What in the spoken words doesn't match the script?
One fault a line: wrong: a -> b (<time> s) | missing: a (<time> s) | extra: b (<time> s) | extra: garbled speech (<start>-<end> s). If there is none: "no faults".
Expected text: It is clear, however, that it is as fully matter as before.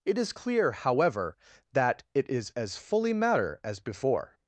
no faults